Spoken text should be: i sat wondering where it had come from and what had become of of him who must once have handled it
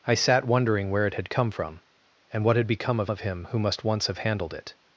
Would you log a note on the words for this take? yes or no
no